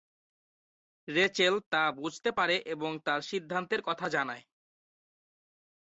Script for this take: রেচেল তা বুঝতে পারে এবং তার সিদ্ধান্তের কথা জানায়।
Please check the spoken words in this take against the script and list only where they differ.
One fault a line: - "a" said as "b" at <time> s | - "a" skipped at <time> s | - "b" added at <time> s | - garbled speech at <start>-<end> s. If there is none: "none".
none